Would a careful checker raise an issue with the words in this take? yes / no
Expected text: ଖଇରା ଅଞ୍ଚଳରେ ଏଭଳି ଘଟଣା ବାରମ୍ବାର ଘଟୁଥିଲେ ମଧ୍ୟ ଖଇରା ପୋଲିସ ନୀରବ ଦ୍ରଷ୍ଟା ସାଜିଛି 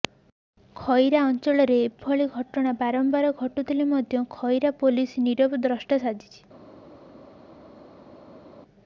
no